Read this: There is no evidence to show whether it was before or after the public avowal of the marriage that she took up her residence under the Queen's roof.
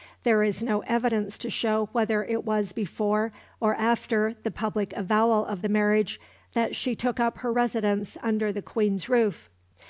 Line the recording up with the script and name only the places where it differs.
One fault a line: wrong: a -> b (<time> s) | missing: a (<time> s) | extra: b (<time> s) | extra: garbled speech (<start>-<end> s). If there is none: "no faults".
no faults